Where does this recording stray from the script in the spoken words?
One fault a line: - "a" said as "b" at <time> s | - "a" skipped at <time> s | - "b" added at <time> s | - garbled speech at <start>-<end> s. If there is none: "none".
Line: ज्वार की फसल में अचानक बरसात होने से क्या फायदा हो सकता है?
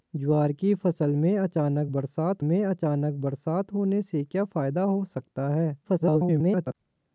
- "में अचानक बरसात" added at 2.4 s
- garbled speech at 5.8-6.7 s